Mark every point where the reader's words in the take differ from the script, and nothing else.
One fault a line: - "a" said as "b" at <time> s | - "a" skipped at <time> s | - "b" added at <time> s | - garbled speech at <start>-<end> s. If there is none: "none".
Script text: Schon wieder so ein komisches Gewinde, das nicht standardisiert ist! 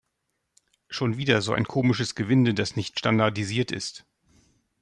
none